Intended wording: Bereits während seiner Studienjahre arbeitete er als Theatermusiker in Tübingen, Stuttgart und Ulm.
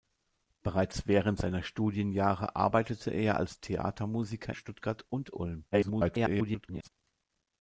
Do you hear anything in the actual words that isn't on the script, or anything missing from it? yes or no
yes